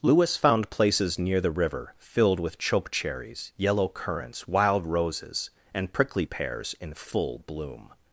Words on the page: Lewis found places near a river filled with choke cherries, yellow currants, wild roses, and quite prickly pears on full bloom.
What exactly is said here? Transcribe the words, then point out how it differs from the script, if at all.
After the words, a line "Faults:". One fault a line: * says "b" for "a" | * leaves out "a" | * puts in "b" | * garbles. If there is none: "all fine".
Lewis found places near the river filled with choke cherries, yellow currants, wild roses, and prickly pears in full bloom.
Faults:
* says "the" for "a"
* leaves out "quite"
* says "in" for "on"